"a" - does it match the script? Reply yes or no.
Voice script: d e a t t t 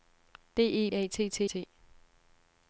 yes